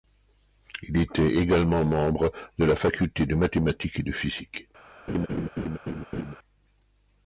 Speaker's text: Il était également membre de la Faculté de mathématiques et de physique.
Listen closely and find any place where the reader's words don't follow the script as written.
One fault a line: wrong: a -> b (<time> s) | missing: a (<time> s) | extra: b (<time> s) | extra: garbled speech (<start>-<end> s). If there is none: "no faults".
no faults